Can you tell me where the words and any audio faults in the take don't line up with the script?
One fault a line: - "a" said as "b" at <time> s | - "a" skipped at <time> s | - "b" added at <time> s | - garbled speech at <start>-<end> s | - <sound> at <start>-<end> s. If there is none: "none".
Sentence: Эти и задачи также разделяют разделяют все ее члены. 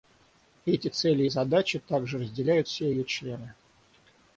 - "цели" added at 0.9 s
- "разделяют" skipped at 2.7 s